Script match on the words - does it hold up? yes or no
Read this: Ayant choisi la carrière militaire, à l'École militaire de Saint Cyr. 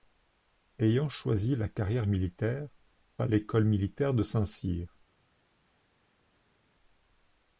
yes